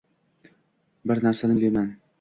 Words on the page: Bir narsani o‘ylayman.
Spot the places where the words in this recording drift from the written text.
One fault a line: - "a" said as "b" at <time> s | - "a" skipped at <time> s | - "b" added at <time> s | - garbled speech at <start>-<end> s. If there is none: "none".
none